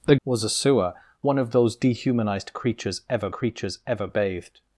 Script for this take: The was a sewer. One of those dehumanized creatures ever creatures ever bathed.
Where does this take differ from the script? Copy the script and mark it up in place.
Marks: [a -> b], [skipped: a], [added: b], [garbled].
The was a sewer. One of those dehumanized creatures ever creatures ever bathed.